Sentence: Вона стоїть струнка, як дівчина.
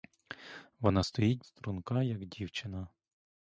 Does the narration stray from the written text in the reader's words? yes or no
no